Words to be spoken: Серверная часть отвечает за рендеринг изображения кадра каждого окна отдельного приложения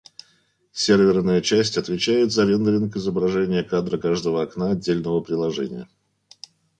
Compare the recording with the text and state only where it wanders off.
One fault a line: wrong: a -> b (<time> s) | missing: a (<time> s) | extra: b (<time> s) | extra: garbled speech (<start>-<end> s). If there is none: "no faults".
no faults